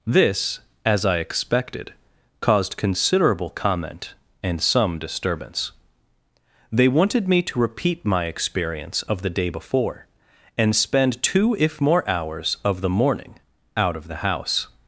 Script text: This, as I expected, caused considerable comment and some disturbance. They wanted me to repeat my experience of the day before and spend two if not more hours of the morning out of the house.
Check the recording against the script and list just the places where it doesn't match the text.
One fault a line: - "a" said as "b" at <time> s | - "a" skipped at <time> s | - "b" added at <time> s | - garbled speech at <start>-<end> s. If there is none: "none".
- "not" skipped at 11.8 s